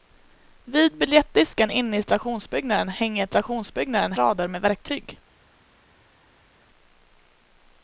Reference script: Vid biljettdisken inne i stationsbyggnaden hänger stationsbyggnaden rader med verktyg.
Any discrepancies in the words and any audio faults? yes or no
no